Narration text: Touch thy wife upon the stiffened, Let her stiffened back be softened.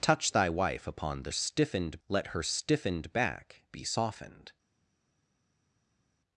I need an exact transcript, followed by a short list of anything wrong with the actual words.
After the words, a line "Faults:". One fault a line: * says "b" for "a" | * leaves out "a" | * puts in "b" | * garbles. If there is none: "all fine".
Touch thy wife upon the stiffened, Let her stiffened back be softened.
Faults:
all fine